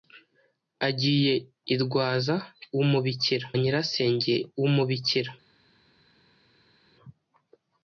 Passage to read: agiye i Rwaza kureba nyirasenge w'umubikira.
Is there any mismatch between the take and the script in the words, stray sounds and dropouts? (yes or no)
yes